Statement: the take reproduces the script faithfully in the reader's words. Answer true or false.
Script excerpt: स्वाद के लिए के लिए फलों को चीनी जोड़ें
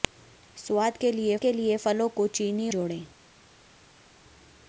true